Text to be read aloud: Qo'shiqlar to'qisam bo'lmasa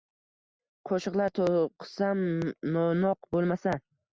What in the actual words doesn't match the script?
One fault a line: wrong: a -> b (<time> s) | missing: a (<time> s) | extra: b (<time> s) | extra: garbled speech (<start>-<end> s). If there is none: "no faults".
extra: no'noq (2.8 s)